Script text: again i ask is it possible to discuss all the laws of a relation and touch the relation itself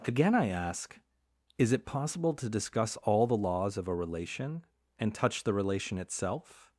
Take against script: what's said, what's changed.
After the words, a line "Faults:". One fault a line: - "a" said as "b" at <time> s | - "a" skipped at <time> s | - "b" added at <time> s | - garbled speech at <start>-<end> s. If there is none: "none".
again i ask is it possible to discuss all the laws of a relation and touch the relation itself
Faults:
none